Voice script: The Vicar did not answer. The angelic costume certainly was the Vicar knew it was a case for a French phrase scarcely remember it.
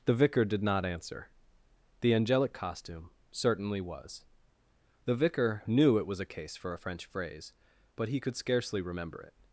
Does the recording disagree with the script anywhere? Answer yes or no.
yes